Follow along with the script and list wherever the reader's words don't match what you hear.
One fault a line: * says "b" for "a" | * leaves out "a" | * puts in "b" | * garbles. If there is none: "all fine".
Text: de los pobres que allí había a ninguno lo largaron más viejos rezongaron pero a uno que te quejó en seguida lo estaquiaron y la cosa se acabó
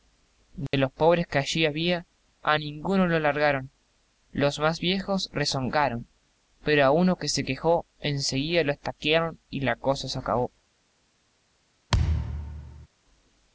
* puts in "los"
* says "se" for "te"